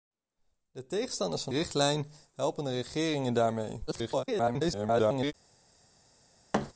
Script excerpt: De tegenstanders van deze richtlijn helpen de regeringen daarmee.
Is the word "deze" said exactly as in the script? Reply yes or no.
no